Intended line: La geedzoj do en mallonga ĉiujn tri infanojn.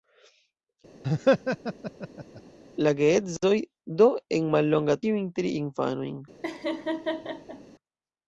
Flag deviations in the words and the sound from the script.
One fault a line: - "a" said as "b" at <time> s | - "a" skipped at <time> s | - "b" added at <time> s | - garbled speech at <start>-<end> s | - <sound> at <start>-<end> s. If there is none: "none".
- laugh at 1.0-2.4 s
- laugh at 6.4-7.6 s